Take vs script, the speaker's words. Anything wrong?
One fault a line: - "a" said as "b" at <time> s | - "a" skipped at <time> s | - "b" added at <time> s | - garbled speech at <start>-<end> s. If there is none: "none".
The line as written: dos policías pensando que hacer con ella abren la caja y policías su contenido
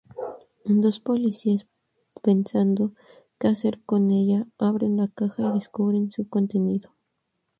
- "policías" said as "descubren" at 5.5 s